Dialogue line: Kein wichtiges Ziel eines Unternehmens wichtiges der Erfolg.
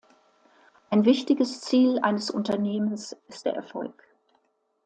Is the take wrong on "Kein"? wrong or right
wrong